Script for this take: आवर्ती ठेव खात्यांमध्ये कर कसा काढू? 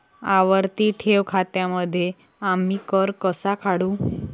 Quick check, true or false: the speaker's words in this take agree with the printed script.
false